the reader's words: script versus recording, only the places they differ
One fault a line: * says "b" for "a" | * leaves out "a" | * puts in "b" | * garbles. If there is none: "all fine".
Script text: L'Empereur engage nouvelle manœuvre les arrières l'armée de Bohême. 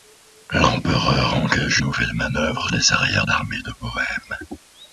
all fine